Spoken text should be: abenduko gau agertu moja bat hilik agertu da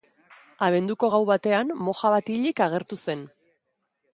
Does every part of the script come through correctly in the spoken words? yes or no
no